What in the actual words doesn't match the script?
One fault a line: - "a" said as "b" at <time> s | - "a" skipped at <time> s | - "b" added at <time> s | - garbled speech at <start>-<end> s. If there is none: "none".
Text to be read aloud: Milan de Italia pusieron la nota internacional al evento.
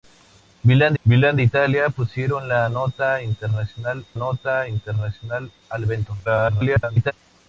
- "milan" added at 1.0 s
- "nota internacional" added at 4.1 s
- garbled speech at 6.2-7.1 s